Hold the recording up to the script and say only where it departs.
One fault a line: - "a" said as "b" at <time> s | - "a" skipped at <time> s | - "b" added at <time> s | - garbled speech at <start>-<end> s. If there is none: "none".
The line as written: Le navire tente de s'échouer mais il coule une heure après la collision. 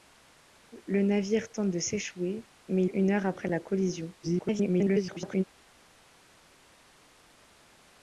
- "il coule" skipped at 2.9 s
- garbled speech at 4.2-5.4 s